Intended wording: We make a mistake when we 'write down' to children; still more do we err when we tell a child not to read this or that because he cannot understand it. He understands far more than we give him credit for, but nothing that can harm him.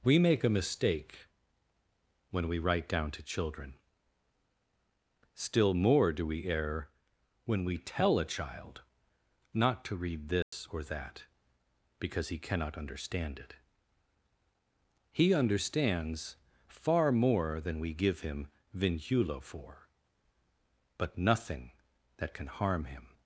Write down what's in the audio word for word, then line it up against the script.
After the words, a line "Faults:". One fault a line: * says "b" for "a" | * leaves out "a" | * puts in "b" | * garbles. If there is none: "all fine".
We make a mistake when we 'write down' to children; still more do we err when we tell a child not to read this or that because he cannot understand it. He understands far more than we give him vinculo for, but nothing that can harm him.
Faults:
* says "vinculo" for "credit"